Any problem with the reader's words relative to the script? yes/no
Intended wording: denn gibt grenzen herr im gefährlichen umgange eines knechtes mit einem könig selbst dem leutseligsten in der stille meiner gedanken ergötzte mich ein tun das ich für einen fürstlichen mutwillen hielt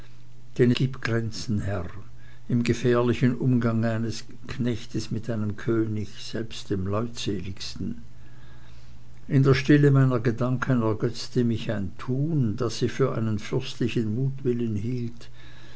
no